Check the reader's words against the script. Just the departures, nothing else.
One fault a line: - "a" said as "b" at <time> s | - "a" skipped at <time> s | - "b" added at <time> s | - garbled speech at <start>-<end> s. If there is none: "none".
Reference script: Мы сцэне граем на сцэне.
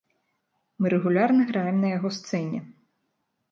- "сцэне" said as "рэгулярна" at 0.9 s
- "яго" added at 2.0 s